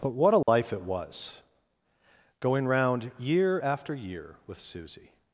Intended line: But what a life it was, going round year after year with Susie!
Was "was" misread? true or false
false